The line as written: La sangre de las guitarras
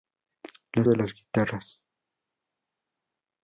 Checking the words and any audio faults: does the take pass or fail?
fail